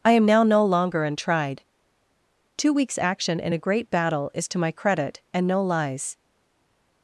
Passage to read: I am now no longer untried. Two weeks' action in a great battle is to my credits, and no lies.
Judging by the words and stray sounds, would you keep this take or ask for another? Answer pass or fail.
fail